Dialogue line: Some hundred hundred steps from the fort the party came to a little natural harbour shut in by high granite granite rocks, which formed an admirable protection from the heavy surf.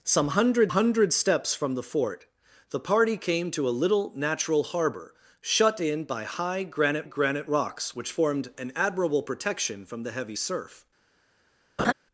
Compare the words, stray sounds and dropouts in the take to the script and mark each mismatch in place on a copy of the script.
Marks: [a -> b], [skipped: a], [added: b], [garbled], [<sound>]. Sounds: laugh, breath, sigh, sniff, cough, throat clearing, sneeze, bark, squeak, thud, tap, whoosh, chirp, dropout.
Some hundred hundred steps from the fort the party came to a little natural harbour shut in by high granite granite rocks, which formed an admirable protection from the heavy surf. [laugh]